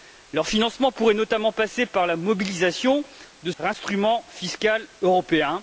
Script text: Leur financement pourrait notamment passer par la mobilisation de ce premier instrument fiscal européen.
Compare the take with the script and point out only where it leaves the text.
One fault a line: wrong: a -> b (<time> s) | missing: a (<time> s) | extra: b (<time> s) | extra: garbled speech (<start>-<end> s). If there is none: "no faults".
missing: ce premier (3.5 s)